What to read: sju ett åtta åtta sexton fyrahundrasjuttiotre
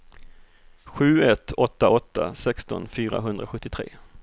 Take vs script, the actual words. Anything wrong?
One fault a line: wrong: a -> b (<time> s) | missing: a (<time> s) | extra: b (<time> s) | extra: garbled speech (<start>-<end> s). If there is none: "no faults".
no faults